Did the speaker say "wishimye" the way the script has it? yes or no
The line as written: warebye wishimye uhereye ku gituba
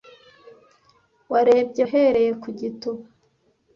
no